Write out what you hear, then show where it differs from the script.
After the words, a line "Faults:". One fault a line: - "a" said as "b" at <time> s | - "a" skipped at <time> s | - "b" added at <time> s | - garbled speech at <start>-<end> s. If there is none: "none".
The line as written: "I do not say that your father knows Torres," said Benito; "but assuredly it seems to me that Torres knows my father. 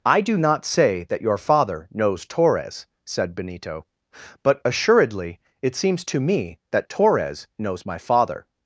"I do not say that your father knows Torres," said Benito; "but assuredly it seems to me that Torres knows my father.
Faults:
none